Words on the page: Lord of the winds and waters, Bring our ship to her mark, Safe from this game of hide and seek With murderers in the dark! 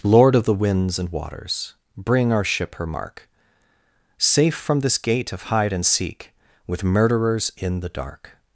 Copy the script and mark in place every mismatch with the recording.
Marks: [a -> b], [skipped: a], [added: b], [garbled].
Lord of the winds and waters, Bring our ship [skipped: to] her mark, Safe from this [game -> gate] of hide and seek With murderers in the dark!